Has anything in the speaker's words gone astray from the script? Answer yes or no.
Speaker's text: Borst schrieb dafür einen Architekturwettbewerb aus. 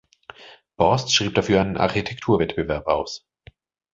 no